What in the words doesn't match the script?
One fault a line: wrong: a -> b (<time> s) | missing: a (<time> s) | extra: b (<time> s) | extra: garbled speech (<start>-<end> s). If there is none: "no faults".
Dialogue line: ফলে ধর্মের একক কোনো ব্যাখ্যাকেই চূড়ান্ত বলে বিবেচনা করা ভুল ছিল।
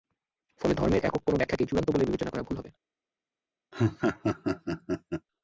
wrong: ছিল -> হবে (2.6 s)